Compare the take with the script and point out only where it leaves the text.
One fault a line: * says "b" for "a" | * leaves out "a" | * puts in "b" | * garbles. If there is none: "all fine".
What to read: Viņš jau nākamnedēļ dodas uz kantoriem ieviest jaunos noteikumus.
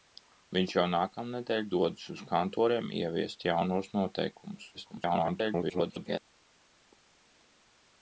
* garbles